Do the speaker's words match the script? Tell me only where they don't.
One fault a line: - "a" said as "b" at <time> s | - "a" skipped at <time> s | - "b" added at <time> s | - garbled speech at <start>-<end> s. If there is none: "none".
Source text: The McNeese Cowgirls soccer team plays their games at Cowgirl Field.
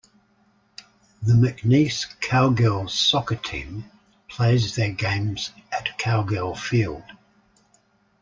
none